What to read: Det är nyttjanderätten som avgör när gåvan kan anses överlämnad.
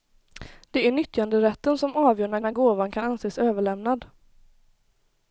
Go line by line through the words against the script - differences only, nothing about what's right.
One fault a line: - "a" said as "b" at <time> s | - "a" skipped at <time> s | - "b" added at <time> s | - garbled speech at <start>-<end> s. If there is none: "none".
- "när" added at 2.4 s